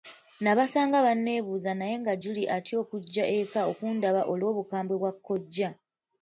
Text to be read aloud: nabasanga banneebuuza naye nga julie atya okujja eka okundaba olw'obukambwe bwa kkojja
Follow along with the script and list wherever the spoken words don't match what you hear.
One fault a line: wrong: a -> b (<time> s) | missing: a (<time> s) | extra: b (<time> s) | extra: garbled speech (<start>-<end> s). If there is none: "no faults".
no faults